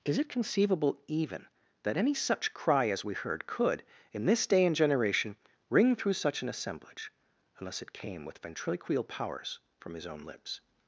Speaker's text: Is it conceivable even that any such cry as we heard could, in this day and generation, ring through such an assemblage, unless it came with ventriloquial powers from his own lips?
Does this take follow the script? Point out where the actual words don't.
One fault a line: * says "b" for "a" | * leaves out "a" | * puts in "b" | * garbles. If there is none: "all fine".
all fine